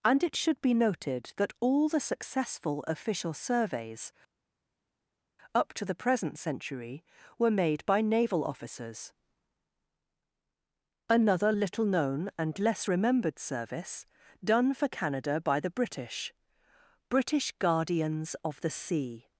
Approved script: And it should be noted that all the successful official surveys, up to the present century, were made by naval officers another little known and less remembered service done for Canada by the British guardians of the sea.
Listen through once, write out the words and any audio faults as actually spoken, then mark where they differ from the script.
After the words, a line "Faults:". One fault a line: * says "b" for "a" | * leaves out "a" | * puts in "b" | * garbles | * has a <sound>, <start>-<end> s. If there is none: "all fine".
And it should be noted that all the successful official surveys, up to the present century, were made by naval officers another little known and less remembered service done for Canada by the British British guardians of the sea.
Faults:
* puts in "British"